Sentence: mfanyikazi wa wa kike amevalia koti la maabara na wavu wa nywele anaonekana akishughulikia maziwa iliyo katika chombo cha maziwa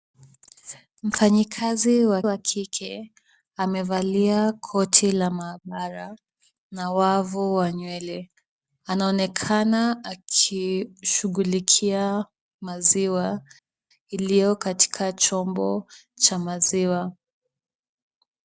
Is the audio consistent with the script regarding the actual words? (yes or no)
yes